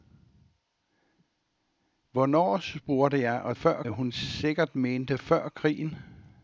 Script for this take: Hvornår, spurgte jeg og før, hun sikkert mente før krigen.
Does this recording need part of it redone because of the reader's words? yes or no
no